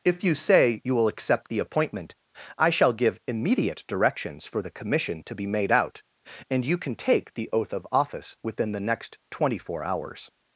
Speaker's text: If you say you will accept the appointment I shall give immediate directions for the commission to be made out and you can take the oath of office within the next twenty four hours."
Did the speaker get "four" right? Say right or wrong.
right